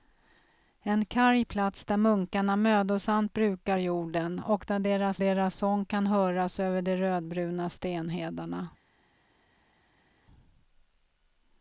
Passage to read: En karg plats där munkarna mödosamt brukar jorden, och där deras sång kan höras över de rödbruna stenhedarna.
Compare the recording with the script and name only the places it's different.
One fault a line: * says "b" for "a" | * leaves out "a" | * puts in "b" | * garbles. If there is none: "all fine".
* puts in "deras"